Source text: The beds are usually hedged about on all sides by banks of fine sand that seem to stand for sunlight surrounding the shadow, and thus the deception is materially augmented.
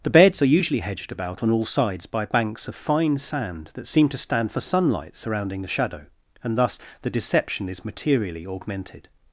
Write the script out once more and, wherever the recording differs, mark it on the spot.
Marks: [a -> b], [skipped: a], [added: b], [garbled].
The beds are usually hedged about on all sides by banks of fine sand that seem to stand for sunlight surrounding the shadow, and thus the deception is materially augmented.